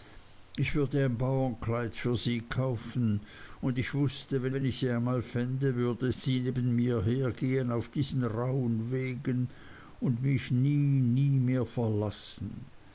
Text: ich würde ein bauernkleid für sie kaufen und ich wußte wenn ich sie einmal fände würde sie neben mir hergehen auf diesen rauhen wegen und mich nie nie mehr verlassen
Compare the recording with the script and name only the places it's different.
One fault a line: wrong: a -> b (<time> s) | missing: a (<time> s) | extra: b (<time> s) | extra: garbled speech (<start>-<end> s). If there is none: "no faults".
extra: wenn (4.5 s)